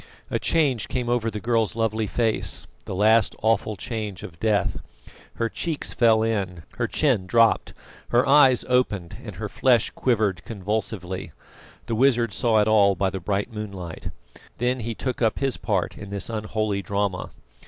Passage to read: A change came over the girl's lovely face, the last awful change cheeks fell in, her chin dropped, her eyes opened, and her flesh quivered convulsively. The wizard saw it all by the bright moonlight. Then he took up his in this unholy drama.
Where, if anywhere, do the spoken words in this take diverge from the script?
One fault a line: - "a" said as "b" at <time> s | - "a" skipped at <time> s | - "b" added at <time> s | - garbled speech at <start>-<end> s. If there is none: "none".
- "of death Her" added at 4.2 s
- "part" added at 15.6 s